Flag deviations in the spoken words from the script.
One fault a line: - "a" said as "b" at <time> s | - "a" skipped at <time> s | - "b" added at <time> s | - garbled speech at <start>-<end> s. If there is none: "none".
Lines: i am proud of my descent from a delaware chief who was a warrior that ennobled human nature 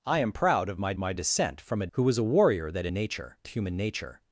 - "my" added at 1.0 s
- "delaware chief" skipped at 1.9 s
- "ennobled" said as "nature" at 2.9 s